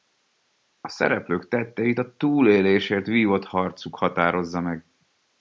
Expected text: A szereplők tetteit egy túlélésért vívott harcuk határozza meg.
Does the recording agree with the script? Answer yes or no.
no